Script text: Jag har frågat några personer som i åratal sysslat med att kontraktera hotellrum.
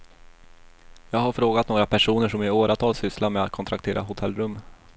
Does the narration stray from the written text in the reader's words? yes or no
no